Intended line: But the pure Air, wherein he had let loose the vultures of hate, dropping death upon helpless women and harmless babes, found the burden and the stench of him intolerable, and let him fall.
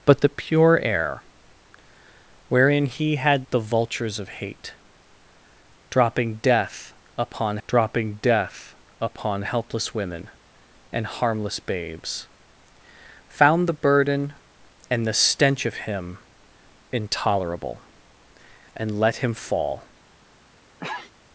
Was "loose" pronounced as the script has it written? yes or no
no